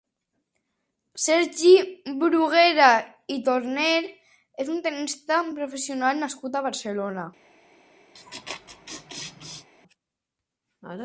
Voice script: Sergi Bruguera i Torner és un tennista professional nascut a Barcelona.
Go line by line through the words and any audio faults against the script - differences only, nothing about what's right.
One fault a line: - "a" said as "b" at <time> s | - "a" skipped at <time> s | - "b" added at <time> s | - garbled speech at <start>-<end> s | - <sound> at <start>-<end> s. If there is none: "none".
- laugh at 8.1-9.7 s